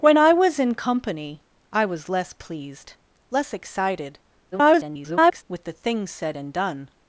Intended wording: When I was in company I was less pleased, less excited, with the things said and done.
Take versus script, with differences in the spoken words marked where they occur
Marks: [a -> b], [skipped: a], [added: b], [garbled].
When I was in company I was less pleased, less excited, [garbled] with the things said and done.